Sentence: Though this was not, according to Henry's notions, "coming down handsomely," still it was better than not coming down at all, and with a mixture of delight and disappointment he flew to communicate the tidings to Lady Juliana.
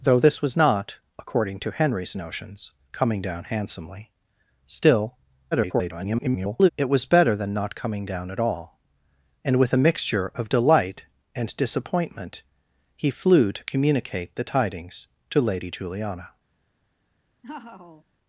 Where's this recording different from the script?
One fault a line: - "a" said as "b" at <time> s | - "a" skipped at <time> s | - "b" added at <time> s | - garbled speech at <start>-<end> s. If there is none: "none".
- garbled speech at 5.5-6.7 s